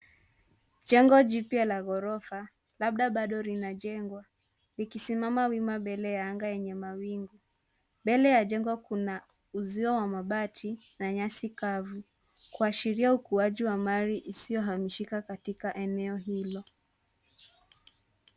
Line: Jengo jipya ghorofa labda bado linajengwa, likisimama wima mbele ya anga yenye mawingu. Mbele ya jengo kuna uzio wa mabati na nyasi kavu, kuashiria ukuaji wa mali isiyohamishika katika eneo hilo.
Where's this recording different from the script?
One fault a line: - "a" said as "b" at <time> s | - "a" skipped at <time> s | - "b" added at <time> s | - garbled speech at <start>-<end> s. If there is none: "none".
- "la" added at 1.6 s